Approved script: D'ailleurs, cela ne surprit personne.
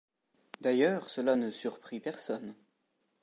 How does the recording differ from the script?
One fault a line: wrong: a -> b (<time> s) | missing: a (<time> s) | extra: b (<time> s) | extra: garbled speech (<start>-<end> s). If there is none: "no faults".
no faults